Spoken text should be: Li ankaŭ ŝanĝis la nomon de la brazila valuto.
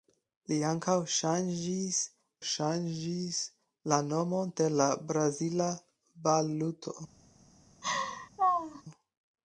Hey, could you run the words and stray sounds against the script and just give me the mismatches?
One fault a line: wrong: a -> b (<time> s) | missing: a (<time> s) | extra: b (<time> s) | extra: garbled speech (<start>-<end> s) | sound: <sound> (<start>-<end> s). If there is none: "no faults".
extra: ŝanĝis (2.5 s)
sound: laugh (7.8-8.8 s)